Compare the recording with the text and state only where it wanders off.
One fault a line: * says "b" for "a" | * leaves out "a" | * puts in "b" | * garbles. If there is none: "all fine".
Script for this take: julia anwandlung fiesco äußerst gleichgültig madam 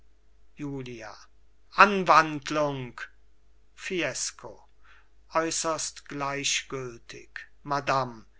all fine